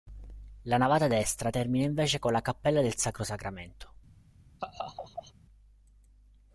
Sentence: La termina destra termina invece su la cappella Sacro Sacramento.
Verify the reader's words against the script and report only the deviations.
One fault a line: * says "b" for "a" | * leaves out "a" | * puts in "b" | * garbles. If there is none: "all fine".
* says "navata" for "termina"
* says "con" for "su"
* puts in "del"